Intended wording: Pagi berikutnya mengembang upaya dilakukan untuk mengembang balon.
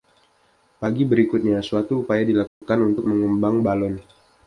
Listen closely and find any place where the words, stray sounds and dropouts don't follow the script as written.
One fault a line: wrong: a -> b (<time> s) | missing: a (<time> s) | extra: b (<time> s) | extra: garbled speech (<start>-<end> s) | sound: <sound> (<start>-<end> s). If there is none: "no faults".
wrong: mengembang -> suatu (1.6 s)
sound: dropout (2.5-2.6 s)